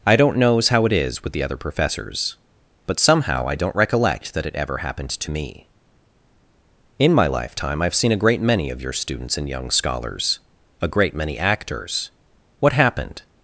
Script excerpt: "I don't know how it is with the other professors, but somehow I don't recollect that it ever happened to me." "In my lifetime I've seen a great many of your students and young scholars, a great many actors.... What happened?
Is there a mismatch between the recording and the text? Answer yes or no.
yes